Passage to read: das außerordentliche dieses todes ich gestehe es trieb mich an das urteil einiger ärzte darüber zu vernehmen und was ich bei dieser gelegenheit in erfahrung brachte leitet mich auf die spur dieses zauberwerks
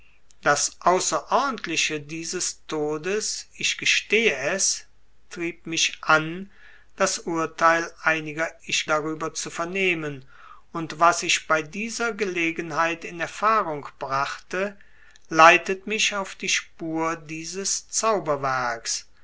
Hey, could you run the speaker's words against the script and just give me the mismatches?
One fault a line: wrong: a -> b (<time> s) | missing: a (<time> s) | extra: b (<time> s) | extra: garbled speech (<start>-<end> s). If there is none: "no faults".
wrong: ärzte -> ich (8.6 s)